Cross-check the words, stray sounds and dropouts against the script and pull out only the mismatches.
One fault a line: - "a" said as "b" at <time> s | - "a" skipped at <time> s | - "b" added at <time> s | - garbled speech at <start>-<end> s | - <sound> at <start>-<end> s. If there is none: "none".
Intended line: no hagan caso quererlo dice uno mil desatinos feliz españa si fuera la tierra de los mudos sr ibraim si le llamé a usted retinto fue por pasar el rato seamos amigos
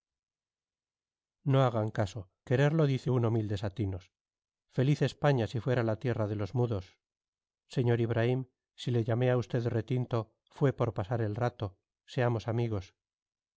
none